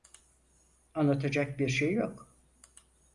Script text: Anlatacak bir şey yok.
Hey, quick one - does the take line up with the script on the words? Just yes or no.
yes